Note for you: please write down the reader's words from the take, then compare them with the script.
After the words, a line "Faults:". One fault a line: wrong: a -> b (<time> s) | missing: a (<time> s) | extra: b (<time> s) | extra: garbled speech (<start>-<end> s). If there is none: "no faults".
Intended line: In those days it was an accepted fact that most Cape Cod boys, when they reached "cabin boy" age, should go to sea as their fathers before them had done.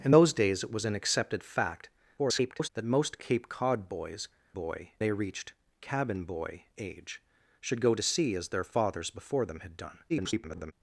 In those days it was an accepted fact [garbled] that most Cape Cod boys, boy they reached "cabin boy" age, should go to sea as their fathers before them had done. [garbled]
Faults:
extra: garbled speech (2.2-2.7 s)
wrong: when -> boy (4.5 s)
extra: garbled speech (10.1-10.7 s)